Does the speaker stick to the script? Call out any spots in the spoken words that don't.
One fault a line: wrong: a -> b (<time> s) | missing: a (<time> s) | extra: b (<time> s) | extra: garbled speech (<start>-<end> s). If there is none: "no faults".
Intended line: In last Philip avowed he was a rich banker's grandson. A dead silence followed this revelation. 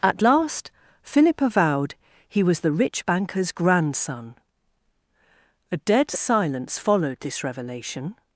wrong: In -> At (0.0 s)
wrong: a -> the (2.6 s)